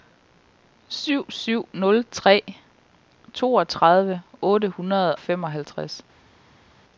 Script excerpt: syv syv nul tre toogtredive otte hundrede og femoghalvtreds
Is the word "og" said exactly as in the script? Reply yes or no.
no